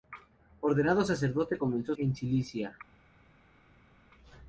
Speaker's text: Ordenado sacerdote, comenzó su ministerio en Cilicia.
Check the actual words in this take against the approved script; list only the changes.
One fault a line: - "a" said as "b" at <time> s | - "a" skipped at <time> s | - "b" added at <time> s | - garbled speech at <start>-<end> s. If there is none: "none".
- "su ministerio" skipped at 1.9 s